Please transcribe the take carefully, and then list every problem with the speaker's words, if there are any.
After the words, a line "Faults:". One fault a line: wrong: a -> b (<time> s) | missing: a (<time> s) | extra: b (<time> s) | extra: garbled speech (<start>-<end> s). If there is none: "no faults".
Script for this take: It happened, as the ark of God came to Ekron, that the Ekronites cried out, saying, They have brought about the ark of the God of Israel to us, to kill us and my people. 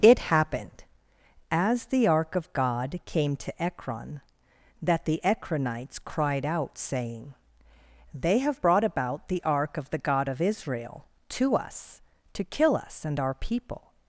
It happened, as the ark of God came to Ekron, that the Ekronites cried out, saying, They have brought about the ark of the God of Israel to us, to kill us and our people.
Faults:
wrong: my -> our (13.2 s)